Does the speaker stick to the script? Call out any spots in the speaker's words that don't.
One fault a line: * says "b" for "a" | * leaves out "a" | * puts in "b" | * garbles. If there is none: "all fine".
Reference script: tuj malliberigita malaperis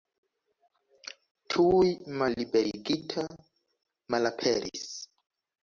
all fine